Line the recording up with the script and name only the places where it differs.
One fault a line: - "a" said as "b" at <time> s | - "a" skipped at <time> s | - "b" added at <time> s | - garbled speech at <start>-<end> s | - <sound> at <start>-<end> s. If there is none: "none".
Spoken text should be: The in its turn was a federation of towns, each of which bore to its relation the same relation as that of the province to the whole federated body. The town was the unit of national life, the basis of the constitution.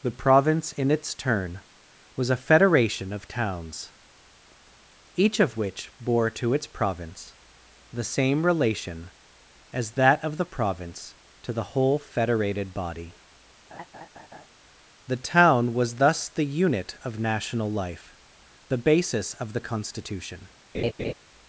- "province" added at 0.1 s
- "relation" said as "province" at 6.7 s
- laugh at 13.7-14.5 s
- "thus" added at 16.0 s
- laugh at 20.7-21.1 s